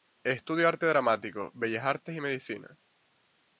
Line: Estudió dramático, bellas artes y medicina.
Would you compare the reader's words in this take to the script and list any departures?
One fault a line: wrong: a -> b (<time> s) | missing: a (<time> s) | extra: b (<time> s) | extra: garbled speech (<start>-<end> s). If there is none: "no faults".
extra: arte (0.7 s)